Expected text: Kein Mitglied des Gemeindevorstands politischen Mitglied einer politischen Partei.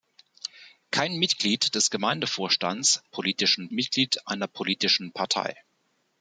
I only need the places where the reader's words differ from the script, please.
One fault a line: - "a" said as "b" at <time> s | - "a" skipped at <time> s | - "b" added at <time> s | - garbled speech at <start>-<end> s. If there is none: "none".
none